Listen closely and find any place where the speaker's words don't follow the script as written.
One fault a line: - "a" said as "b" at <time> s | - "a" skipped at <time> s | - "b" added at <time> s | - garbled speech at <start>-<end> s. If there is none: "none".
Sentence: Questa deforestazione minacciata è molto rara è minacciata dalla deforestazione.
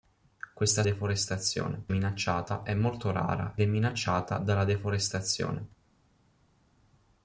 none